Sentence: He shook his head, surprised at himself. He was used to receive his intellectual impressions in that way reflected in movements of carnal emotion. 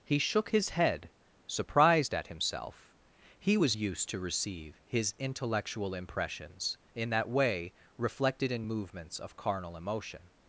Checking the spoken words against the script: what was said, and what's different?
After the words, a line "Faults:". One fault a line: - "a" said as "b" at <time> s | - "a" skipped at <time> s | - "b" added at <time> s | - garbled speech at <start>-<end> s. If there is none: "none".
He shook his head, surprised at himself. He was used to receive his intellectual impressions in that way reflected in movements of carnal emotion.
Faults:
none